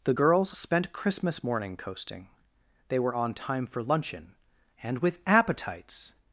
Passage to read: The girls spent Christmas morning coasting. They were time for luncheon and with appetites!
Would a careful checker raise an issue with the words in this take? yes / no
yes